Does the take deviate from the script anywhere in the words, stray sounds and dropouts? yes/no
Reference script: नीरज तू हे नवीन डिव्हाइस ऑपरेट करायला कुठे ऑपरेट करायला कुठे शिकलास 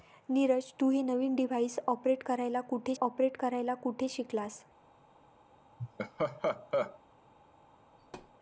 yes